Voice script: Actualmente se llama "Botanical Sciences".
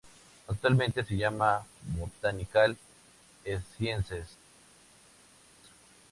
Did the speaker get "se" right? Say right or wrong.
right